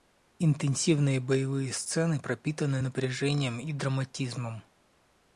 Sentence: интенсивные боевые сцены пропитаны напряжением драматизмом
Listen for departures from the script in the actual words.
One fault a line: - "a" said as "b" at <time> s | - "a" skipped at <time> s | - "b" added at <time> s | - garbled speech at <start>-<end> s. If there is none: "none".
- "и" added at 3.6 s